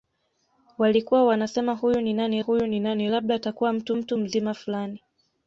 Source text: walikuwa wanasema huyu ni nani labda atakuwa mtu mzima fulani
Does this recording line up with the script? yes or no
no